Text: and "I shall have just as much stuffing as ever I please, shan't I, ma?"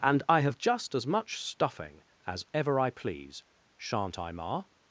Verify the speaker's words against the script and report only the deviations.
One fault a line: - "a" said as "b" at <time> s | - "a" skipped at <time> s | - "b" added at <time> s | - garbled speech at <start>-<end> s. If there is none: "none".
- "shall" skipped at 0.4 s